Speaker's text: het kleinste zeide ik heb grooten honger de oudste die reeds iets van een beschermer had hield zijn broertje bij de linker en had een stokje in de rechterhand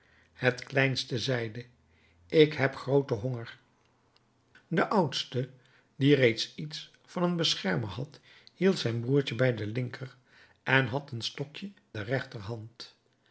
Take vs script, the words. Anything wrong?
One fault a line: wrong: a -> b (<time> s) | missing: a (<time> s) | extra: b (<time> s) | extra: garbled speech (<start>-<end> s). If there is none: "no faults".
missing: in (11.7 s)